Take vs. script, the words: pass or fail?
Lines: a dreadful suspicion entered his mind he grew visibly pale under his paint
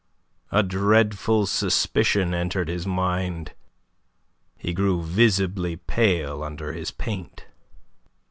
pass